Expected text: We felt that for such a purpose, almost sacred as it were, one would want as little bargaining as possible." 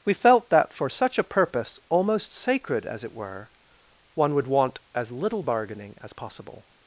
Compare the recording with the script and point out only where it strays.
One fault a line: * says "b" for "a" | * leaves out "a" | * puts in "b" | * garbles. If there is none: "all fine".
all fine